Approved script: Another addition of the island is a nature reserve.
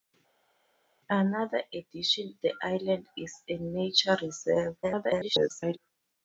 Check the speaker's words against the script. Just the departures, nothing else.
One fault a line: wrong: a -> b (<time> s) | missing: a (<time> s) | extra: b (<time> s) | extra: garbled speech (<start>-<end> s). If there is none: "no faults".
missing: of (2.4 s)
extra: garbled speech (4.8-5.8 s)